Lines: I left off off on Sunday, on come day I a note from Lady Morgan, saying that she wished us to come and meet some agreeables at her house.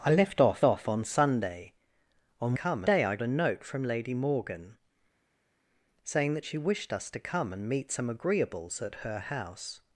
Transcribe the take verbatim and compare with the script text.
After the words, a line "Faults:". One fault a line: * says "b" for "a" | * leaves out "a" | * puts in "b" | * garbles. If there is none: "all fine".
I left off off on Sunday, on come day I a note from Lady Morgan, saying that she wished us to come and meet some agreeables at her house.
Faults:
all fine